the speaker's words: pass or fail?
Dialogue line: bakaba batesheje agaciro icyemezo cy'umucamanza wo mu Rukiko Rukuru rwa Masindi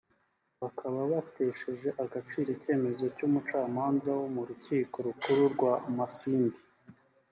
pass